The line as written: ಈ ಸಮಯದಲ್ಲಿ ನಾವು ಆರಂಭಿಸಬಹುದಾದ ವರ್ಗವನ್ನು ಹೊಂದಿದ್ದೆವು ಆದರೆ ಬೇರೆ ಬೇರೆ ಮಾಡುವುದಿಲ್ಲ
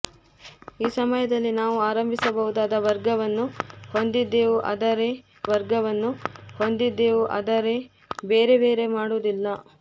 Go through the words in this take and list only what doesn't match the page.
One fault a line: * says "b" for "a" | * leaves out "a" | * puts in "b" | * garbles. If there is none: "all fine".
* puts in "ವರ್ಗವನ್ನು ಹೊಂದಿದ್ದೆವು ಆದರೆ"